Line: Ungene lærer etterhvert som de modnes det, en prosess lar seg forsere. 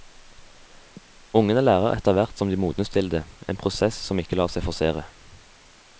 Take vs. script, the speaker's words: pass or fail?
fail